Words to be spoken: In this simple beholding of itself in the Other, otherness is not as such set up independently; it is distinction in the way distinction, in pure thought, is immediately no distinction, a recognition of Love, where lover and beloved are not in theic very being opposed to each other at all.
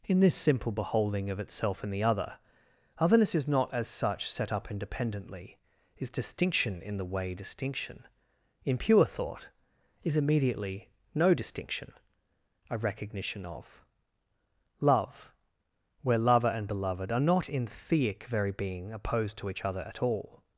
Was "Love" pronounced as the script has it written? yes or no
yes